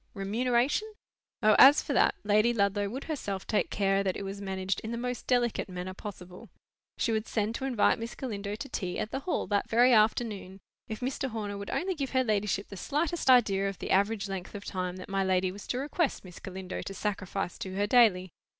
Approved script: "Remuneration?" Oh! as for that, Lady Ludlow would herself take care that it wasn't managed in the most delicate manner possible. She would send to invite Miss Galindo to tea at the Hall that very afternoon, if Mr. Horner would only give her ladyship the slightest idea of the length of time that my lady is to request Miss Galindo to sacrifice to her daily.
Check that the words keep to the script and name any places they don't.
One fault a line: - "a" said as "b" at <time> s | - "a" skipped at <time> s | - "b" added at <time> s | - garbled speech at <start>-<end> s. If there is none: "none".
- "wasn't" said as "was" at 4.2 s
- "average" added at 13.9 s
- "is" said as "was" at 15.5 s